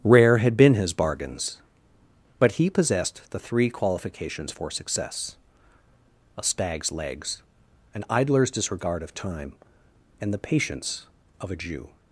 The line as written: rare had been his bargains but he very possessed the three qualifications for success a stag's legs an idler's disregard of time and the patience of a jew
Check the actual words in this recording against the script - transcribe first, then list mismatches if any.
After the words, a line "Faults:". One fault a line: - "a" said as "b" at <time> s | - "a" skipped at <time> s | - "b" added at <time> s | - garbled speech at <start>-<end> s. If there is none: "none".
rare had been his bargains but he possessed the three qualifications for success a stag's legs an idler's disregard of time and the patience of a jew
Faults:
- "very" skipped at 2.7 s